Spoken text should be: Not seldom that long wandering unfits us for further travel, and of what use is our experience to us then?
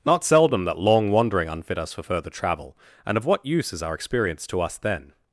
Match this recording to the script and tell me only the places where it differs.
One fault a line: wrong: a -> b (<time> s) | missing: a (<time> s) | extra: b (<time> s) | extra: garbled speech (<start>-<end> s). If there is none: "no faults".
wrong: unfits -> unfit (1.5 s)